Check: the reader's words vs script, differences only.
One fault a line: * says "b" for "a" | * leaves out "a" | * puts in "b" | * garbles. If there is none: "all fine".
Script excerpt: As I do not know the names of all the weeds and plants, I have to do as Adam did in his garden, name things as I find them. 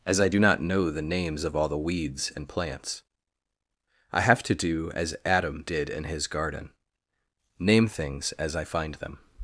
all fine